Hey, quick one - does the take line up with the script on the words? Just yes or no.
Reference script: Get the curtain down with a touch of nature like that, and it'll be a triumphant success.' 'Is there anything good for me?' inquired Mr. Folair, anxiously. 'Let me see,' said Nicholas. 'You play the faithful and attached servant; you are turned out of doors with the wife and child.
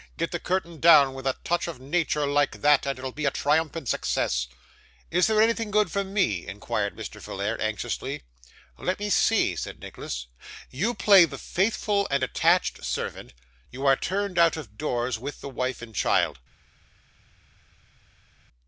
yes